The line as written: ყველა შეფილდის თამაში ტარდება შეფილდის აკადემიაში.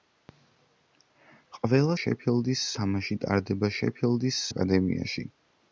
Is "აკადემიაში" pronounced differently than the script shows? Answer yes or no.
no